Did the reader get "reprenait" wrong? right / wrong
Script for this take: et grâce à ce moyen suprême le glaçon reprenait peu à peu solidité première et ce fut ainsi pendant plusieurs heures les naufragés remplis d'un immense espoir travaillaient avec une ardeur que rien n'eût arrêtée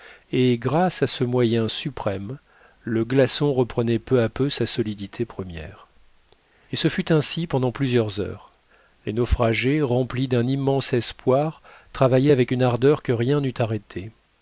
right